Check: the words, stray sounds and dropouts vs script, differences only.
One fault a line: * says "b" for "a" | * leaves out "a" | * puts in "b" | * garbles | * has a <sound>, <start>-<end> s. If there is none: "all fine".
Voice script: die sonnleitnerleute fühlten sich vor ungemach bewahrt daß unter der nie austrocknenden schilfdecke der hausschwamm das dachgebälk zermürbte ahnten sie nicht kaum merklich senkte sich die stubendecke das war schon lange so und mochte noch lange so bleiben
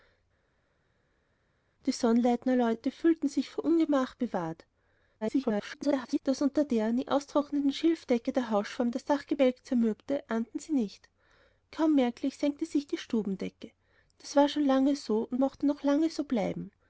* garbles